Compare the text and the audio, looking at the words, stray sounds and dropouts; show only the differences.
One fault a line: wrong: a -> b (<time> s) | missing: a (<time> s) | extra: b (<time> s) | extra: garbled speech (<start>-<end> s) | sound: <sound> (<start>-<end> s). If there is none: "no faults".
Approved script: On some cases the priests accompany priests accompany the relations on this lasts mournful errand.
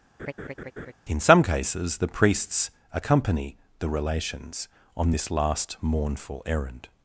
sound: laugh (0.2-0.9 s)
wrong: On -> In (1.1 s)
missing: priests accompany (3.6 s)
wrong: lasts -> last (5.3 s)